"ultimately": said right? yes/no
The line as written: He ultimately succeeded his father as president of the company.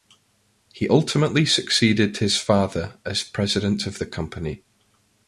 yes